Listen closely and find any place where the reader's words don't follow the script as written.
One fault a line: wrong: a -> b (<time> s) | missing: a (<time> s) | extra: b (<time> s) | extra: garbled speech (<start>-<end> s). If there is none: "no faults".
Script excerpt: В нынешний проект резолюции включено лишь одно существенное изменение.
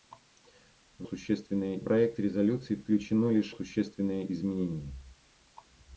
wrong: нынешний -> существенное (1.0 s)
missing: одно (3.5 s)